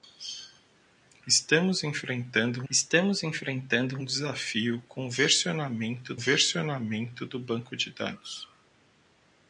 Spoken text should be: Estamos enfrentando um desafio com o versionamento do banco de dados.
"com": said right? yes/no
yes